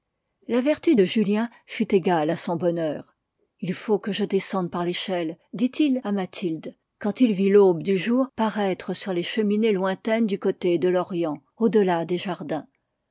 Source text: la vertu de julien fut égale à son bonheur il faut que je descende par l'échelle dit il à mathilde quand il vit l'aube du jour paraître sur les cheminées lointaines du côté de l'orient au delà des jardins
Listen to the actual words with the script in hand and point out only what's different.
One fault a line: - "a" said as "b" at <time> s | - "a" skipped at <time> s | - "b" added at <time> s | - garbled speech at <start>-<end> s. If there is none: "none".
none